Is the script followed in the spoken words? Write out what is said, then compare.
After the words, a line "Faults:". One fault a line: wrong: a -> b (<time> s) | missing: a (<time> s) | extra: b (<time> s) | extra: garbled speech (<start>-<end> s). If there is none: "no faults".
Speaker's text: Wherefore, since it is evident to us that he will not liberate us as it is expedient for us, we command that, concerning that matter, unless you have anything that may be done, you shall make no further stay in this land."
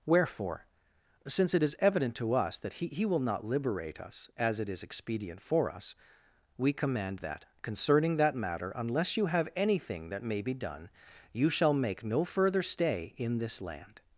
Wherefore, since it is evident to us that he he will not liberate us as it is expedient for us, we command that, concerning that matter, unless you have anything that may be done, you shall make no further stay in this land."
Faults:
extra: he (2.9 s)